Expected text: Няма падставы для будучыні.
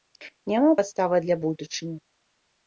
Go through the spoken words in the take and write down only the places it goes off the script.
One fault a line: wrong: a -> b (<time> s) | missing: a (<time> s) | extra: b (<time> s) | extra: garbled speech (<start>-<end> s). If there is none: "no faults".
no faults